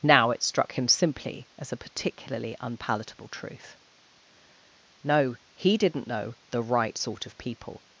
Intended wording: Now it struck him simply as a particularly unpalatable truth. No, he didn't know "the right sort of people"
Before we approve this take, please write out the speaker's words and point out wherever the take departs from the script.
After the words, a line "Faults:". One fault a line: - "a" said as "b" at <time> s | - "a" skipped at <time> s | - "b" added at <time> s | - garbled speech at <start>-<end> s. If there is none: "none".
Now it struck him simply as a particularly unpalatable truth. No, he didn't know "the right sort of people"
Faults:
none